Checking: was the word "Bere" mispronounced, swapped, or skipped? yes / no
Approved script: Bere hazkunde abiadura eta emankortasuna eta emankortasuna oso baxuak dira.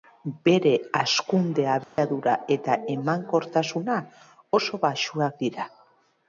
no